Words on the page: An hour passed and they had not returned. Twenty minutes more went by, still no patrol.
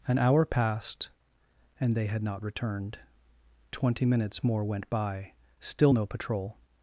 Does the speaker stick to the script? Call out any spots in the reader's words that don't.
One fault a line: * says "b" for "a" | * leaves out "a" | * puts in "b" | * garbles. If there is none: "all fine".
all fine